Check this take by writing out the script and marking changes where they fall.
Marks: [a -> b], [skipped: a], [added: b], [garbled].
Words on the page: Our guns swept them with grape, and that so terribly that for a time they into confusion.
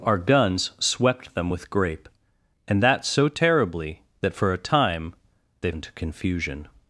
Our guns swept them with grape, and that so terribly that for a time they into confusion.